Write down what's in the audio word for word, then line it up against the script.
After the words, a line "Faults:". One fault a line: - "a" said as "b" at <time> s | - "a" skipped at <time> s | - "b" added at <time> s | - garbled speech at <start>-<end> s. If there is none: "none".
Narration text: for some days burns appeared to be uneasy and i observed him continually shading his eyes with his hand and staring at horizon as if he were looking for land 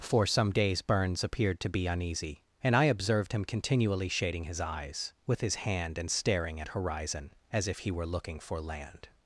for some days burns appeared to be uneasy and i observed him continually shading his eyes with his hand and staring at horizon as if he were looking for land
Faults:
none